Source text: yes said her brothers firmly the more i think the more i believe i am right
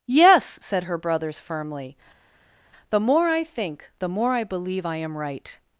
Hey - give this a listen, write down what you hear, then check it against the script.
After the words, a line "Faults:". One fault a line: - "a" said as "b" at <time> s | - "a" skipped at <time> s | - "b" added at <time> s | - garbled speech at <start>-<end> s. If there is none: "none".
yes said her brothers firmly the more i think the more i believe i am right
Faults:
none